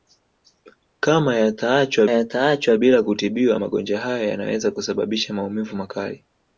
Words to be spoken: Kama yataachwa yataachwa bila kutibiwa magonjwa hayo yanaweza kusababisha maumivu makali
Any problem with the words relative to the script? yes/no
no